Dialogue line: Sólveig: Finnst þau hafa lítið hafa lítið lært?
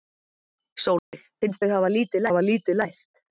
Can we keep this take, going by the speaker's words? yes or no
yes